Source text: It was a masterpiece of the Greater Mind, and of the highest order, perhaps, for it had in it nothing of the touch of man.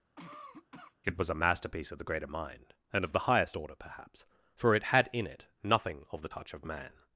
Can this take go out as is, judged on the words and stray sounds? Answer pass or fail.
fail